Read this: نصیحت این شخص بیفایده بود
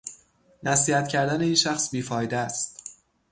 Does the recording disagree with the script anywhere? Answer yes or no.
yes